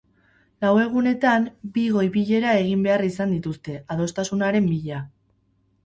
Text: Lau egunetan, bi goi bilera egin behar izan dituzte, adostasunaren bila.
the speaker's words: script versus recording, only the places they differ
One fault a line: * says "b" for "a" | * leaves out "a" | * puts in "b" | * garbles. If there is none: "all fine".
all fine